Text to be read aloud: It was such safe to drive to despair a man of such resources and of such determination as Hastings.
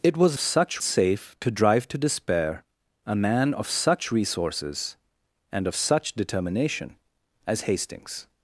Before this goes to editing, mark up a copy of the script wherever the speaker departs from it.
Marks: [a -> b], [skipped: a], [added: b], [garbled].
It was such safe to drive to despair a man of such resources and of such determination as Hastings.